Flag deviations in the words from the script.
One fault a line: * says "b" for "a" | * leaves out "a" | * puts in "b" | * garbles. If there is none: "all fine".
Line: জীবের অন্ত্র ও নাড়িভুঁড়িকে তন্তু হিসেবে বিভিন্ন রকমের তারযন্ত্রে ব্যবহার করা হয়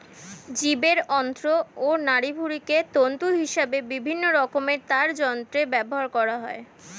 all fine